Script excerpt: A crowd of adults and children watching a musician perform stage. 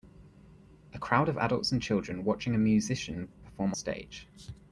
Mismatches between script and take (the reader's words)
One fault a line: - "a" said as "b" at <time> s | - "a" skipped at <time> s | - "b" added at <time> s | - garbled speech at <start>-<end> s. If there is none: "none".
none